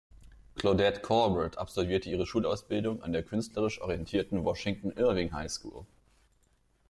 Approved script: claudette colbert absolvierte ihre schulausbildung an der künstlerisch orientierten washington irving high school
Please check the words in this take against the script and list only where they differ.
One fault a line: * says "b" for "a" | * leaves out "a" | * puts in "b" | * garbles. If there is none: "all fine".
all fine